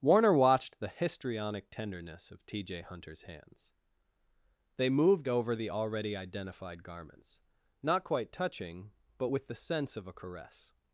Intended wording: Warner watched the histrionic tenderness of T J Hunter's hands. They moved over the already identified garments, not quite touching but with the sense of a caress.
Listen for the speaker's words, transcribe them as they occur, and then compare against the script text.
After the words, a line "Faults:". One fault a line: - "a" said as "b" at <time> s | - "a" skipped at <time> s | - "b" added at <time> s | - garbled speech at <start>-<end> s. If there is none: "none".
Warner watched the histrionic tenderness of T J Hunter's hands. They moved over the already identified garments, not quite touching but with the sense of a caress.
Faults:
none